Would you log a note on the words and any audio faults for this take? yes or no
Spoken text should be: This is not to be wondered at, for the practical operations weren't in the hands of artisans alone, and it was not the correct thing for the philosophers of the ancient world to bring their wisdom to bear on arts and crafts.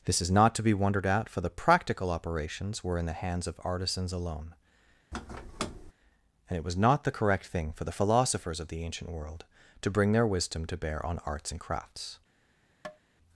yes